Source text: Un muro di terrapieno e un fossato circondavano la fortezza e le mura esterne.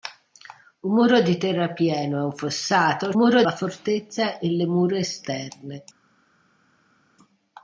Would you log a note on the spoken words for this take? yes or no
yes